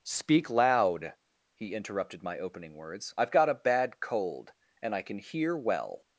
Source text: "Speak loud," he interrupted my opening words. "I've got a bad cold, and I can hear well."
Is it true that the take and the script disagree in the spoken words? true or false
false